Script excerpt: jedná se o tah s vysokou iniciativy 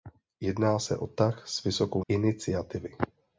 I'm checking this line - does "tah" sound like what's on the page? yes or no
yes